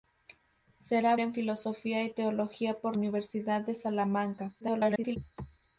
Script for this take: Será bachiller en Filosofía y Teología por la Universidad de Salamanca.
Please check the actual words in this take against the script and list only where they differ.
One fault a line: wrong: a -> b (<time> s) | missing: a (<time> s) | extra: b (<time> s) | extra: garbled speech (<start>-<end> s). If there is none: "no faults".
missing: bachiller (1.1 s)
missing: la (3.0 s)
extra: garbled speech (4.6-5.2 s)